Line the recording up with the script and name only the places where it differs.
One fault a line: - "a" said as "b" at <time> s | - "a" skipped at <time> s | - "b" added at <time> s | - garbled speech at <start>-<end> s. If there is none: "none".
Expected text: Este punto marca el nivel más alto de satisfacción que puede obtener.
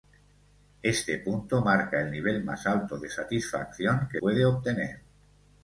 none